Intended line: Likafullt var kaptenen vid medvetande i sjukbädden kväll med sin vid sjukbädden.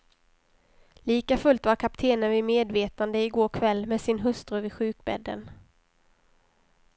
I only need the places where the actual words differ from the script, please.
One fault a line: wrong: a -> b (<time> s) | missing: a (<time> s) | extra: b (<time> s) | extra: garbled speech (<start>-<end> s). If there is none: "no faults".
wrong: sjukbädden -> går (3.3 s)
extra: hustru (4.2 s)